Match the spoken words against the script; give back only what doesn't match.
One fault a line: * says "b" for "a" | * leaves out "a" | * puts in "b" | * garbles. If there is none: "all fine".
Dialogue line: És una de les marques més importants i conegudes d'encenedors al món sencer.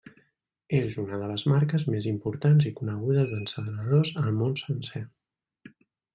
all fine